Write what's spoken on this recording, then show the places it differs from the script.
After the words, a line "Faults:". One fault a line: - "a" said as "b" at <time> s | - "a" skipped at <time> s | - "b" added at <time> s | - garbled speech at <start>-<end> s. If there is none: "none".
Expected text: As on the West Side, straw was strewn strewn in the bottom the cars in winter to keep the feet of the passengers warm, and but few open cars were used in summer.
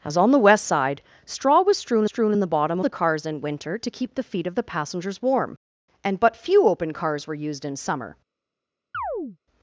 As on the West Side, straw was strewn strewn in the bottom the cars in winter to keep the feet of the passengers warm, and but few open cars were used in summer.
Faults:
none